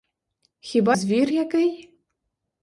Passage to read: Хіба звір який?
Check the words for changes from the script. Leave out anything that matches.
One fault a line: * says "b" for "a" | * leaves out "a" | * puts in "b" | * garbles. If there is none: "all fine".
all fine